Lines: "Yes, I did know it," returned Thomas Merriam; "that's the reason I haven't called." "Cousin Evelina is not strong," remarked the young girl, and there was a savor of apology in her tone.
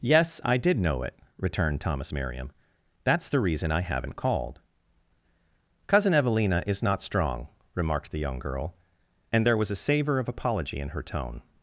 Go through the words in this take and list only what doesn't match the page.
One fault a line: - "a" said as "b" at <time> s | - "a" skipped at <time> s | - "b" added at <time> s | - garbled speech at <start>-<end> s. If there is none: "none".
none